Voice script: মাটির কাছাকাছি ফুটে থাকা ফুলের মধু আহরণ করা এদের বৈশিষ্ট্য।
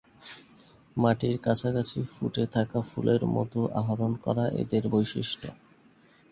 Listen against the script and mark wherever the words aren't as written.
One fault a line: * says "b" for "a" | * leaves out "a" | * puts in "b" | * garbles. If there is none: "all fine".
all fine